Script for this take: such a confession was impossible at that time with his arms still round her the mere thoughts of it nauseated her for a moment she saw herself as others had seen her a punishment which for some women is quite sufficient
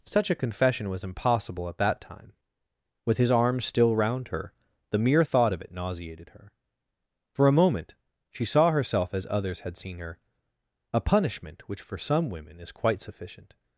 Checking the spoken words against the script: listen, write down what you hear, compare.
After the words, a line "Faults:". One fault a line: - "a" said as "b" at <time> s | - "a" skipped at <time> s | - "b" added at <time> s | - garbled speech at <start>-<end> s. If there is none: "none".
such a confession was impossible at that time with his arms still round her the mere thought of it nauseated her for a moment she saw herself as others had seen her a punishment which for some women is quite sufficient
Faults:
- "thoughts" said as "thought" at 5.2 s